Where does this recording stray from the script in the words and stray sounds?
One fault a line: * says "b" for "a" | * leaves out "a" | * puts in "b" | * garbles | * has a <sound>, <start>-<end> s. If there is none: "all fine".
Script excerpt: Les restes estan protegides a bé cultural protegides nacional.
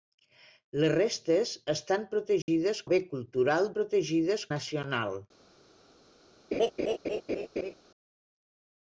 * has a dropout, 2.4-2.5 s
* has a laugh, 6.5-7.7 s